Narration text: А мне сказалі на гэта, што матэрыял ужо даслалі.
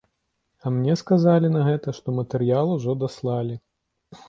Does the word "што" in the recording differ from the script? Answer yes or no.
no